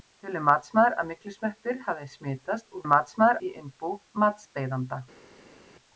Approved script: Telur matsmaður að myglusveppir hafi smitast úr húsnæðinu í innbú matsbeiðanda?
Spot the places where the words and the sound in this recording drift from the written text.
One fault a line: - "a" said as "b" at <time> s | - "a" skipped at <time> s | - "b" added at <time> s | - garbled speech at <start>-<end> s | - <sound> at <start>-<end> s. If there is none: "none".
- "húsnæðinu" said as "matsmaður" at 2.9 s